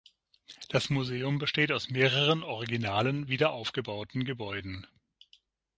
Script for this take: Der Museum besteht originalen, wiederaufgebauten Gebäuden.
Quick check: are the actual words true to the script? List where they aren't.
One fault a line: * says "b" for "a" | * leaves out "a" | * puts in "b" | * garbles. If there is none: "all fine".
* says "Das" for "Der"
* puts in "aus mehreren"